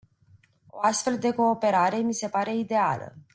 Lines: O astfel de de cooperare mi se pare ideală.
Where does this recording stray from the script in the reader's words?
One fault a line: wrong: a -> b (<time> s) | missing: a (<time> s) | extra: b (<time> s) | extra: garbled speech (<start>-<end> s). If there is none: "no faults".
missing: de (1.3 s)